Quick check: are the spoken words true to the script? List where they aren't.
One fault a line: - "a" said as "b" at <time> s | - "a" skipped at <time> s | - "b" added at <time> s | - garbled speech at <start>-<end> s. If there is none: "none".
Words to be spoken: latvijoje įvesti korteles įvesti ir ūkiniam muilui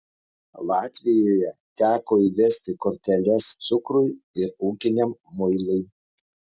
- "teko" added at 1.8 s
- "įvesti" said as "cukrui" at 3.7 s